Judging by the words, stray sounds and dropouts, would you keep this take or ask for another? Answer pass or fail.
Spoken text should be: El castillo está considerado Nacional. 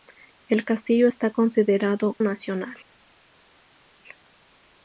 pass